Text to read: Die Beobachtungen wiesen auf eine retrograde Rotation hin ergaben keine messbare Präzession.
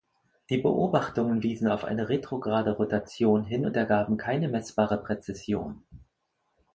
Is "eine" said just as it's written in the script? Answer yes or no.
yes